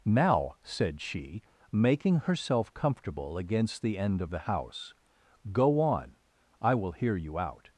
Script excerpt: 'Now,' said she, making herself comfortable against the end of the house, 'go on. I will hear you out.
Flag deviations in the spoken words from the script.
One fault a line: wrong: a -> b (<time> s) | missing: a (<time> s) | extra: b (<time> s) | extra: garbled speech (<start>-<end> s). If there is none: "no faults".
no faults